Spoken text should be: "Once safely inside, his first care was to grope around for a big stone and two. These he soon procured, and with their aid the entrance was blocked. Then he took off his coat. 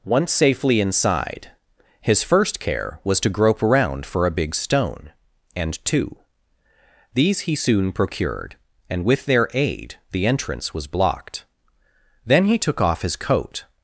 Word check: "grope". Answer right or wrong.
right